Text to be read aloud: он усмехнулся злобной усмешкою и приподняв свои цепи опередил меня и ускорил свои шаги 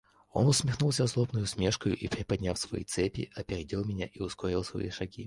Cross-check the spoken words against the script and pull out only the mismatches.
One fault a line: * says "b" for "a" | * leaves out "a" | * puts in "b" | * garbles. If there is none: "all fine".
all fine